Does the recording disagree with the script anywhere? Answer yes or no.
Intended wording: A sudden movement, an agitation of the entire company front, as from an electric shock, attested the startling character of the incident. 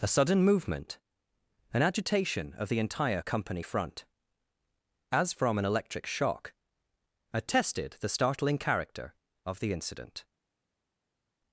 no